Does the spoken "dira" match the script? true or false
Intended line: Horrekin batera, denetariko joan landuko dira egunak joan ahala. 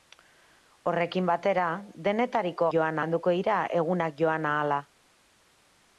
true